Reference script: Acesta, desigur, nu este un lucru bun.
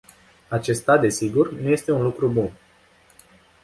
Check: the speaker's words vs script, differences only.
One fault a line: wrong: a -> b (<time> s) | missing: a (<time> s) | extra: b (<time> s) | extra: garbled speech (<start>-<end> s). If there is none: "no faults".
no faults